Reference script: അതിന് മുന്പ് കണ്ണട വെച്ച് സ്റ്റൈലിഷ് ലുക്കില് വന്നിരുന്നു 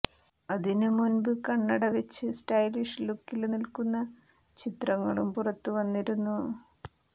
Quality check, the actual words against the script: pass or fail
fail